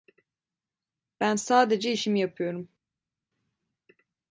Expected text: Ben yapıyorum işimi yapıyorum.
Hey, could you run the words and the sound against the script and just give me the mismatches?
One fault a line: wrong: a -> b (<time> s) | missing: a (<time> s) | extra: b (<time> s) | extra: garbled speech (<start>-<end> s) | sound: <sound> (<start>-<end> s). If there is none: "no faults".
wrong: yapıyorum -> sadece (1.4 s)